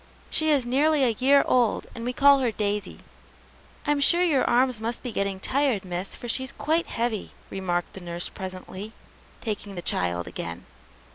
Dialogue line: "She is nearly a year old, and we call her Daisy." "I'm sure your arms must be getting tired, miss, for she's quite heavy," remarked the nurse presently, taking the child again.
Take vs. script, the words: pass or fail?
pass